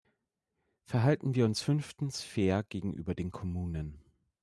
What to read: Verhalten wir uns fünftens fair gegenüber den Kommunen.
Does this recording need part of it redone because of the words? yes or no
no